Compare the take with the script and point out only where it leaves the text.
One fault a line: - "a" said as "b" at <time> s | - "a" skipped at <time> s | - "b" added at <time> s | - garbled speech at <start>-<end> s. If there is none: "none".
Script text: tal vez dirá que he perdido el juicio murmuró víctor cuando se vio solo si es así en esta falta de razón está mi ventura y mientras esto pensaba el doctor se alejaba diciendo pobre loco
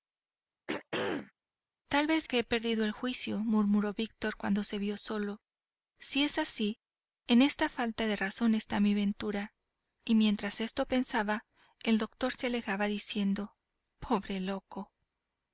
- "dirá" skipped at 2.2 s